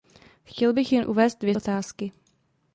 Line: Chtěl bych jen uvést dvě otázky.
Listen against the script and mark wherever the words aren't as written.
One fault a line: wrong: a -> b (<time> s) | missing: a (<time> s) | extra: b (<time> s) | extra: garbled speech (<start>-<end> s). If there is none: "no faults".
no faults